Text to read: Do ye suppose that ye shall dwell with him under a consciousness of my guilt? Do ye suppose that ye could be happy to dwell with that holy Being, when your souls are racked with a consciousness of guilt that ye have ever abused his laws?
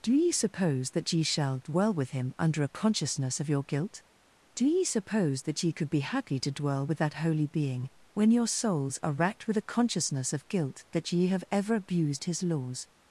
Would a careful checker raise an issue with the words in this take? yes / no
yes